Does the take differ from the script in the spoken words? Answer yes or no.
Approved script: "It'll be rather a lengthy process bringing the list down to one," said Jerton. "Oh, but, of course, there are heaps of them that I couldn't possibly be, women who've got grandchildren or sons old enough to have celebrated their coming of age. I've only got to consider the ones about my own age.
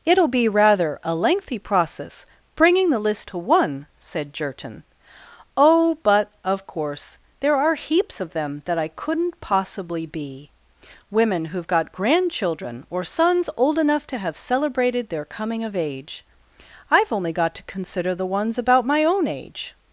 yes